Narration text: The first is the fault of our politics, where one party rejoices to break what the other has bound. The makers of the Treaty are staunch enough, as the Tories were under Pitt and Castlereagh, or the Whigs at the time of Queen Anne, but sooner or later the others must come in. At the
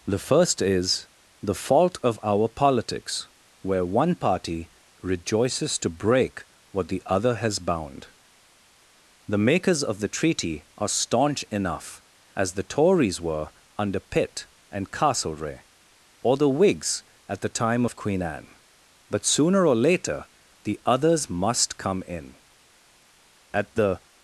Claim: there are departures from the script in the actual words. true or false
false